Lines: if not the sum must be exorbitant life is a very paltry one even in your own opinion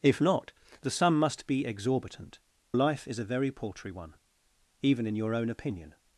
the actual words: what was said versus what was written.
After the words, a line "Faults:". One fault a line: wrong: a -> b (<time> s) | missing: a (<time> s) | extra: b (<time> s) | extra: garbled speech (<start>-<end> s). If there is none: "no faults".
if not the sum must be exorbitant life is a very paltry one even in your own opinion
Faults:
no faults